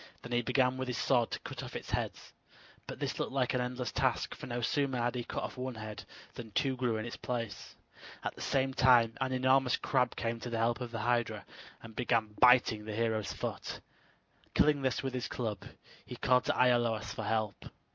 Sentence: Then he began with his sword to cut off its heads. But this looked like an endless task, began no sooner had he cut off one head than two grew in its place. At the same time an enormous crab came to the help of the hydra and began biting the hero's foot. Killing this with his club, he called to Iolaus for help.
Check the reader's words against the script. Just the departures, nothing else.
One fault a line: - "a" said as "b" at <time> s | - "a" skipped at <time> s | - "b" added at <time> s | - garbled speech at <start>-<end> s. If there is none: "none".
- "began" said as "for" at 4.3 s